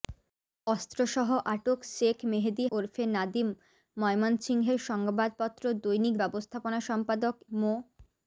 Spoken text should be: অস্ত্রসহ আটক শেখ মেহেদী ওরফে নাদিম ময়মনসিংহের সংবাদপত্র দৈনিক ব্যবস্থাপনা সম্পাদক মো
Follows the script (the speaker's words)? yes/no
yes